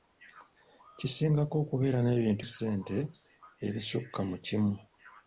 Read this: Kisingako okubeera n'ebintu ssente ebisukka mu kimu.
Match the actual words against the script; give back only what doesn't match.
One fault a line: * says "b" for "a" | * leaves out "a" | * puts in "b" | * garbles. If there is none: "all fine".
all fine